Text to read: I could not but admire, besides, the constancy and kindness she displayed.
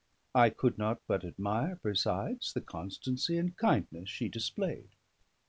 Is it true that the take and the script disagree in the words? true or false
false